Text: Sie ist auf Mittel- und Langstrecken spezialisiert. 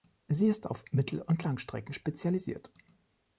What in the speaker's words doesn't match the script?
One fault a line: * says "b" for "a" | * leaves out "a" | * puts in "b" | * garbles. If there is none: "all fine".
all fine